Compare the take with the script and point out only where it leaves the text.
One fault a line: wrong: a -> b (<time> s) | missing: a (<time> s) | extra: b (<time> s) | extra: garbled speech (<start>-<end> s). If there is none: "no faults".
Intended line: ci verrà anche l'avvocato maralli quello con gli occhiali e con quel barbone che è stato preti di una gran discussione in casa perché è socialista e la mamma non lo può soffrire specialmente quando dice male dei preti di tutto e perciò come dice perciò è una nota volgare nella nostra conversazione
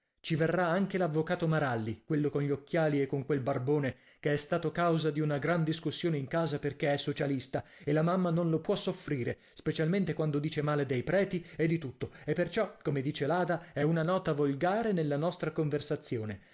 wrong: preti -> causa (4.7 s)
extra: e (11.6 s)
wrong: perciò -> l'ada (13.3 s)